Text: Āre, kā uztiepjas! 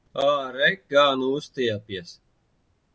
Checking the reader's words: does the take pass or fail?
fail